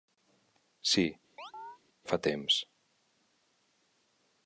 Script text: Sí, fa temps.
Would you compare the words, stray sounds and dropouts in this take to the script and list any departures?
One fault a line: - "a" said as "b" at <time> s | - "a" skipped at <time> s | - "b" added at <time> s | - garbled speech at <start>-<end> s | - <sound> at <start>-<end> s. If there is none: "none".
- chirp at 1.4-1.8 s